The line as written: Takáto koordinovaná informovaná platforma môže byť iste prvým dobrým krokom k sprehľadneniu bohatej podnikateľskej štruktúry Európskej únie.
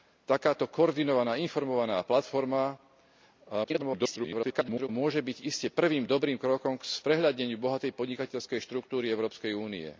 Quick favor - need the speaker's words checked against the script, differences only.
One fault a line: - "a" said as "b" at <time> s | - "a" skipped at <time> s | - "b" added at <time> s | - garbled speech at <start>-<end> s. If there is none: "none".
- garbled speech at 3.6-4.9 s